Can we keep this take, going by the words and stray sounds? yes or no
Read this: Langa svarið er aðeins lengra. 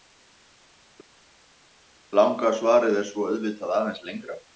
no